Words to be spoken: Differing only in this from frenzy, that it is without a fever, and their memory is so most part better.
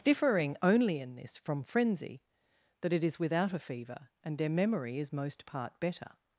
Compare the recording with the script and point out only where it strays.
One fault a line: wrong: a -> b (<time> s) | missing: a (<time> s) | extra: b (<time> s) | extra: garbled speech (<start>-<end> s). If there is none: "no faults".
missing: so (5.1 s)